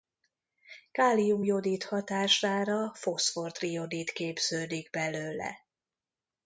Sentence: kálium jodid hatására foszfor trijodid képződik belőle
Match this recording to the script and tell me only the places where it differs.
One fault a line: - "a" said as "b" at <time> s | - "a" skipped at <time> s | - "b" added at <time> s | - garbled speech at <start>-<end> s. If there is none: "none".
none